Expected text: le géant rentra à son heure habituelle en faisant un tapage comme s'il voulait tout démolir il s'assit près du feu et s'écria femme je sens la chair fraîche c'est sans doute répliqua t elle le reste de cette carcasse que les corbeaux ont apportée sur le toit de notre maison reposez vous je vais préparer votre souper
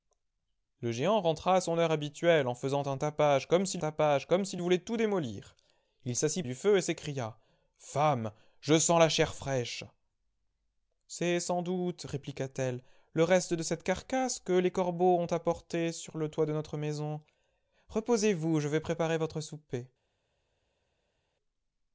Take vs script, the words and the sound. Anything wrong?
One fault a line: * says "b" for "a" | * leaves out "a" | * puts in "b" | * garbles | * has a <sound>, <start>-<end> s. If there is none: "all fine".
* puts in "tapage comme s'il"
* leaves out "près"